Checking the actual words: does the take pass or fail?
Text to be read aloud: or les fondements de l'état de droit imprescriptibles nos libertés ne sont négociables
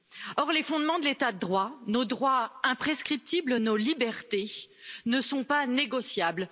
fail